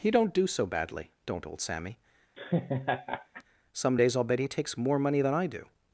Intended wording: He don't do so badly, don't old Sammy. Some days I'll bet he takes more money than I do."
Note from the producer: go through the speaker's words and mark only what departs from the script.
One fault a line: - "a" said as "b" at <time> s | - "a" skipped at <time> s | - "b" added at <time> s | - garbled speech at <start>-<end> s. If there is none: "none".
none